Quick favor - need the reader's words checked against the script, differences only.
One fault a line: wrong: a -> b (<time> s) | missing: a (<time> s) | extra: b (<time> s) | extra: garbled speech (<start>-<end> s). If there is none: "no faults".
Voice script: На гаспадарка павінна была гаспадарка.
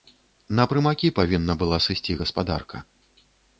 wrong: гаспадарка -> прымакі (0.7 s)
extra: сысці (1.9 s)